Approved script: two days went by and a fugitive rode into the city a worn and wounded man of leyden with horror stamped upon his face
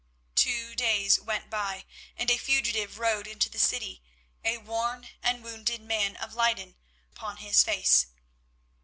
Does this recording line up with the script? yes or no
no